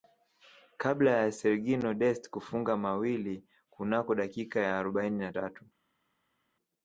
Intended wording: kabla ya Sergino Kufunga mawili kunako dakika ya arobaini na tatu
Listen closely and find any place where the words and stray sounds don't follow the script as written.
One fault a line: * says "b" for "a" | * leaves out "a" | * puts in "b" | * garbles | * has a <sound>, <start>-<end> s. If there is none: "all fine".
* puts in "Dest"